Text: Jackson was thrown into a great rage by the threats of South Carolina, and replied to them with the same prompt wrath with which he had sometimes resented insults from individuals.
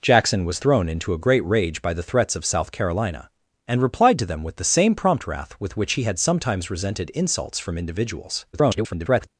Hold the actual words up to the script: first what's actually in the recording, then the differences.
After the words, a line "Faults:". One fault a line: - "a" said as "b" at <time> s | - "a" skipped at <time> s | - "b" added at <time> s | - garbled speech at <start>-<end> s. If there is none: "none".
Jackson was thrown into a great rage by the threats of South Carolina, and replied to them with the same prompt wrath with which he had sometimes resented insults from individuals. [garbled]
Faults:
- garbled speech at 8.5-9.3 s